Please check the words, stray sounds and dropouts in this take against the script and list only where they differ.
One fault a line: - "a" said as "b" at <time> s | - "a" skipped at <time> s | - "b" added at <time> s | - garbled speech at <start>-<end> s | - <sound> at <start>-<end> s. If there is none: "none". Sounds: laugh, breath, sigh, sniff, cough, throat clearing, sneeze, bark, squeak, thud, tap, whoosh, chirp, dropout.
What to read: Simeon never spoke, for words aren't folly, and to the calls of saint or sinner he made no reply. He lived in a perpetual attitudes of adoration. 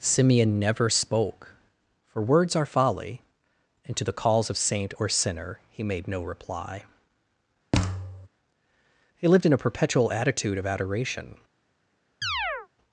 - "aren't" said as "are" at 2.5 s
- thud at 7.7-8.3 s
- "attitudes" said as "attitude" at 10.1 s
- chirp at 12.2-12.7 s